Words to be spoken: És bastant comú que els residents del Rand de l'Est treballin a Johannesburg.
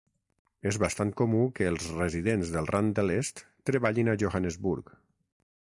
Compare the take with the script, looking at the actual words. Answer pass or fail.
pass